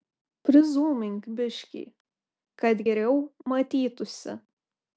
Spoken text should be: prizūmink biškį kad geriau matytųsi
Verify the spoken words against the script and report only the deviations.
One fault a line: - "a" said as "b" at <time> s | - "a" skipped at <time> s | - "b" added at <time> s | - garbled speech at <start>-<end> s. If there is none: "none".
none